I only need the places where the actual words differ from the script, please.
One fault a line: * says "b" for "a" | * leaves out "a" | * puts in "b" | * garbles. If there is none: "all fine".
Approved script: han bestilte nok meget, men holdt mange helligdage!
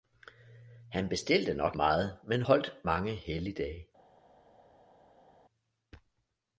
all fine